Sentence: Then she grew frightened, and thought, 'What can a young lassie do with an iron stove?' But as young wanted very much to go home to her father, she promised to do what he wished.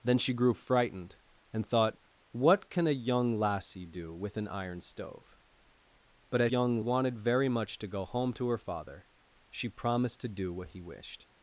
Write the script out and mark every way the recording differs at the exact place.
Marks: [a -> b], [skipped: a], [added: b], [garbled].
Then she grew frightened, and thought, 'What can a young lassie do with an iron stove?' But as young wanted very much to go home to her father, she promised to do what he wished.